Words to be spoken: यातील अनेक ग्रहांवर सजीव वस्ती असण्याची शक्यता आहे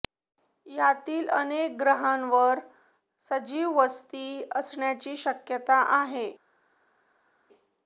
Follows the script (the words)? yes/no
yes